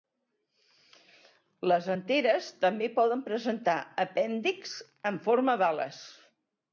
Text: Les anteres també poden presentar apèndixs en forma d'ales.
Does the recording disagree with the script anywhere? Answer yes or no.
no